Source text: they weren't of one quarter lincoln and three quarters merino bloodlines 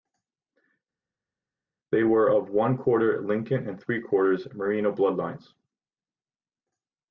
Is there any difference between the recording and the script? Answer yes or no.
yes